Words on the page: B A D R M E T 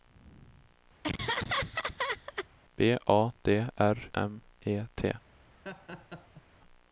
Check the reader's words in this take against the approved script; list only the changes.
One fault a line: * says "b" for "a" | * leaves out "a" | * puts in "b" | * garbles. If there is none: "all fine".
all fine